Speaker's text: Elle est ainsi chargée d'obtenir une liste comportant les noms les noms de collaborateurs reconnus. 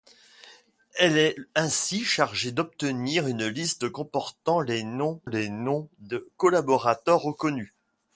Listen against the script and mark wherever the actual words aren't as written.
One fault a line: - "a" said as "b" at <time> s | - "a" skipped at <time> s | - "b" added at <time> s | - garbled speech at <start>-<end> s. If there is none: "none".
none